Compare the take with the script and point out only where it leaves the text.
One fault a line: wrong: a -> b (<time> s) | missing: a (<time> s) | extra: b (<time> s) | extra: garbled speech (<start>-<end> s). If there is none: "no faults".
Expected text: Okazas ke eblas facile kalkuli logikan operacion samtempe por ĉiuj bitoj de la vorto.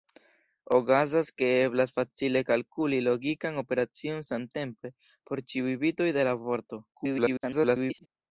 extra: garbled speech (6.9-8.1 s)